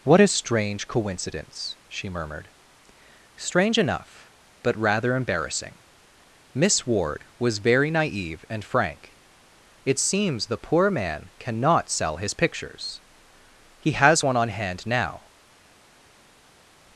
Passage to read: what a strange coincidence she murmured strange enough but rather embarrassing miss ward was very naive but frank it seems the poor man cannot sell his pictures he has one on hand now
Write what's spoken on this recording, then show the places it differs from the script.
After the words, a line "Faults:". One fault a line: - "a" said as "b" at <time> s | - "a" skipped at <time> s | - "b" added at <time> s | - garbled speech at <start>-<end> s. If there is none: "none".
what a strange coincidence she murmured strange enough but rather embarrassing miss ward was very naive and frank it seems the poor man cannot sell his pictures he has one on hand now
Faults:
- "but" said as "and" at 8.5 s